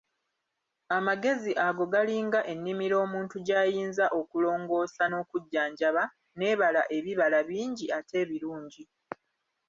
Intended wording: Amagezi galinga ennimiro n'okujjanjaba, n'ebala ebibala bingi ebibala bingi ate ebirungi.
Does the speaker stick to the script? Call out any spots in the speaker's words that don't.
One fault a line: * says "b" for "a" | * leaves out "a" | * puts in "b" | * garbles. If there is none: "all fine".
* puts in "ago"
* puts in "omuntu gy'ayinza okulongoosa"
* leaves out "ebibala bingi"